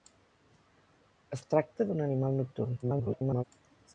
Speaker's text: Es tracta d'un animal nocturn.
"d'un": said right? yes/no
yes